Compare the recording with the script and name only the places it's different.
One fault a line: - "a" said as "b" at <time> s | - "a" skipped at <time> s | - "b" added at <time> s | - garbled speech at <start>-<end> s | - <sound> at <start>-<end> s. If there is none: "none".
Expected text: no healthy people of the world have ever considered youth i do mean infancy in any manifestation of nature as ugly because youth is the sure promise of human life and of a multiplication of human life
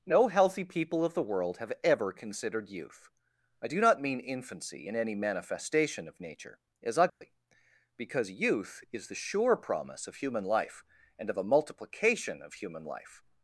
- "not" added at 3.8 s
- dropout at 7.1-7.2 s